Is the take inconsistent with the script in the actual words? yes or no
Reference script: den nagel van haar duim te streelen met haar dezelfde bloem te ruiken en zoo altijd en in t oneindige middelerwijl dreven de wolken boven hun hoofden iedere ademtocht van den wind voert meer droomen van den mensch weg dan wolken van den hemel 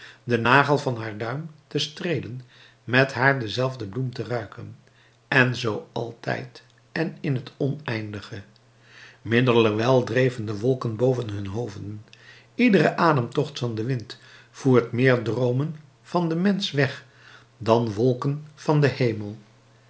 no